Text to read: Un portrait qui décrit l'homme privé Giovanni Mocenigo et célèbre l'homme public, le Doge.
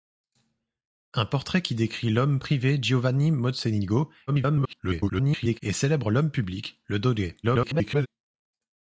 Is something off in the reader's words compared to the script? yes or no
yes